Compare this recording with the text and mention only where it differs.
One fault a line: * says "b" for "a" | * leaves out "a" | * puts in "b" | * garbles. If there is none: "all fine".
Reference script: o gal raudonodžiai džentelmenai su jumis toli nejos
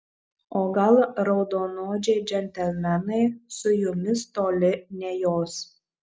all fine